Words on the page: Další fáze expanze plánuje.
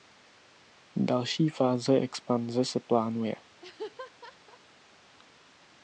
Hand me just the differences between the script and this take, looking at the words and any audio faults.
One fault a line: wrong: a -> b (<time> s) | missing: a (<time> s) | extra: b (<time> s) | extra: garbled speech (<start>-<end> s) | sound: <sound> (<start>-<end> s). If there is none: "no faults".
extra: se (2.6 s)
sound: laugh (3.6-4.6 s)